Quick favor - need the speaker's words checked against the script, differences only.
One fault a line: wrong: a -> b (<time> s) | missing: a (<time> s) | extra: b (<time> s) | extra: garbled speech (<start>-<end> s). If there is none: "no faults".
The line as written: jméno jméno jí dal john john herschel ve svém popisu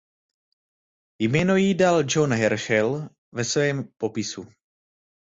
missing: jméno (1.6 s)
missing: john (2.3 s)